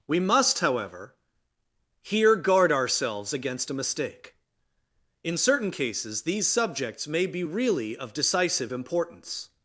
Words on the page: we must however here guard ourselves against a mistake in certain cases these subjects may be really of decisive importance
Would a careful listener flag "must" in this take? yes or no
no